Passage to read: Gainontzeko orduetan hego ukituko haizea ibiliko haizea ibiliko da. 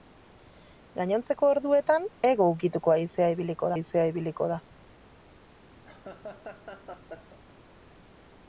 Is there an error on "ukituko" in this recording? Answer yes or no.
no